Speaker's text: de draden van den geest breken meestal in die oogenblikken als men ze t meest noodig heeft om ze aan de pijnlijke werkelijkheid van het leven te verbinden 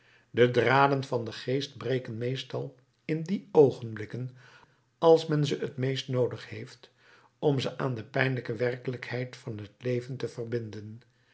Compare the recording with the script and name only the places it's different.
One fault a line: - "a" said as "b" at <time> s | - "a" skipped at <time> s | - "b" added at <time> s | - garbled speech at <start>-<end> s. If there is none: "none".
none